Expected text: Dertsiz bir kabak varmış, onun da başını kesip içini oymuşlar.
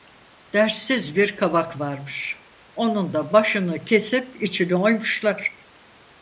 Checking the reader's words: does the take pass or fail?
pass